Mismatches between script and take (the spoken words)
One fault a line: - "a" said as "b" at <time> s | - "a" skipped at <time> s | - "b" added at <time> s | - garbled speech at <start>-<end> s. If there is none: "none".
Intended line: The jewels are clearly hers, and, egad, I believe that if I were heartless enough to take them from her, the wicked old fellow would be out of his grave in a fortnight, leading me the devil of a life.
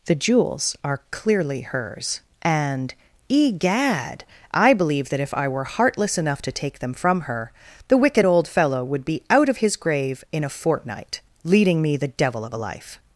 none